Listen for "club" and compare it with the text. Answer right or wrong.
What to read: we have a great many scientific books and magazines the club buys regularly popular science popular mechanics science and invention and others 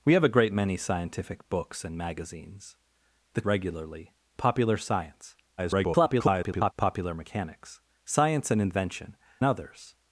wrong